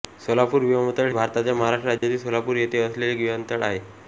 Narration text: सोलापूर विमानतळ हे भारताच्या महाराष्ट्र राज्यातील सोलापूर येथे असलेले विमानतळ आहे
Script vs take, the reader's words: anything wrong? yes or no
yes